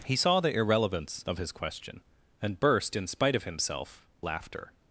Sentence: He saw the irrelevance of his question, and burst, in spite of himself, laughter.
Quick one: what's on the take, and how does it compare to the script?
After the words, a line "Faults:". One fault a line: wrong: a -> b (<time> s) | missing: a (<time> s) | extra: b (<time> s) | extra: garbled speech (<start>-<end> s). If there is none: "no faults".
He saw the irrelevance of his question, and burst, in spite of himself, laughter.
Faults:
no faults